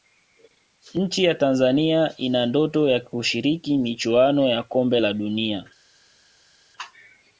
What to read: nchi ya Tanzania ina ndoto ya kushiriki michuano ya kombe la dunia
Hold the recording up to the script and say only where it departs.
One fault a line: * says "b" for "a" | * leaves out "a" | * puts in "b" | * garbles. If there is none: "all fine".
all fine